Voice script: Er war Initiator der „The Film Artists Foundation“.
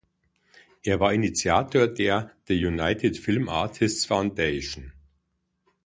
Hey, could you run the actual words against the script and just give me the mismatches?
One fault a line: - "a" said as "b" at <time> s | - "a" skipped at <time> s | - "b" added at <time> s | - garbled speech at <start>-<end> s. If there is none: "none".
- "United" added at 2.6 s